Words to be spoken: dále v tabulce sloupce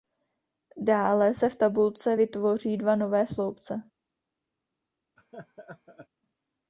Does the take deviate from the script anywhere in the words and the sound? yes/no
yes